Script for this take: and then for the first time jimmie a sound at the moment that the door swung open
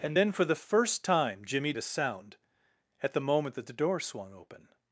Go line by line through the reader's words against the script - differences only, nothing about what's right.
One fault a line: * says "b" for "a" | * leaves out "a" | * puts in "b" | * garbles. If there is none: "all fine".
all fine